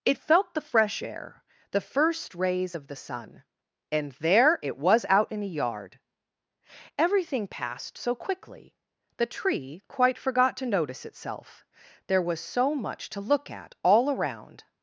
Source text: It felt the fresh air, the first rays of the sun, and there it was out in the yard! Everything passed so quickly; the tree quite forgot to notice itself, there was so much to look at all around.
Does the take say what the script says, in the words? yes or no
yes